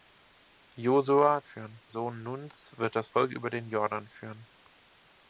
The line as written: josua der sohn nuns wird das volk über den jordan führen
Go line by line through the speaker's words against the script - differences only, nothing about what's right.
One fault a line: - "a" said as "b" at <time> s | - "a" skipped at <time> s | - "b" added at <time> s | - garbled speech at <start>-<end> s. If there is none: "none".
- "der" said as "führen" at 1.4 s